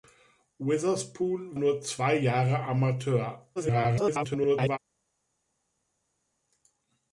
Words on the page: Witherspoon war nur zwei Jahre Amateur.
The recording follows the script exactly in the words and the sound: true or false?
false